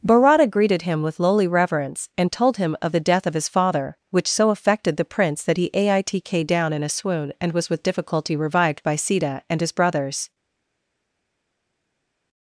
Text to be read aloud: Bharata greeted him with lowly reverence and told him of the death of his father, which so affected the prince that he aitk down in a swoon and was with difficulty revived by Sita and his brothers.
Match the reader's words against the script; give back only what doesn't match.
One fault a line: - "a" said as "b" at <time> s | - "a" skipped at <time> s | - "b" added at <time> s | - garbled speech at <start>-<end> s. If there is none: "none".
none